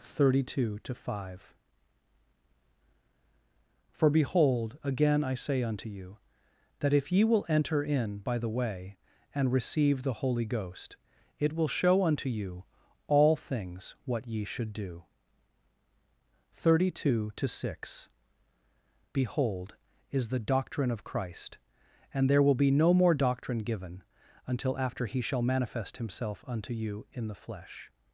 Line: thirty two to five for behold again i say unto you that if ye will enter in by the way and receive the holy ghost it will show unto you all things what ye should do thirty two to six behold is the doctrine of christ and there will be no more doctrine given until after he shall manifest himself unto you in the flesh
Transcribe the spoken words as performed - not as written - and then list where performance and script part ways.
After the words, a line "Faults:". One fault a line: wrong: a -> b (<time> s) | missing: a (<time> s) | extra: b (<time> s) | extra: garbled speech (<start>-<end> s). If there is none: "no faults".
thirty two to five for behold again i say unto you that if ye will enter in by the way and receive the holy ghost it will show unto you all things what ye should do thirty two to six behold is the doctrine of christ and there will be no more doctrine given until after he shall manifest himself unto you in the flesh
Faults:
no faults